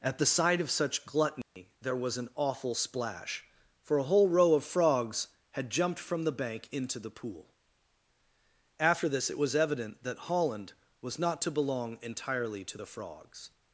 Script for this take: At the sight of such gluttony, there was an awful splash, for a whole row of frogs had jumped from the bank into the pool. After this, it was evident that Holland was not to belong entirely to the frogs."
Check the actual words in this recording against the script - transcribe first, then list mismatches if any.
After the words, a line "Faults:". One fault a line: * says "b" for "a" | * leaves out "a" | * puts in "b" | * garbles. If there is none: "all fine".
At the sight of such gluttony, there was an awful splash, for a whole row of frogs had jumped from the bank into the pool. After this, it was evident that Holland was not to belong entirely to the frogs."
Faults:
all fine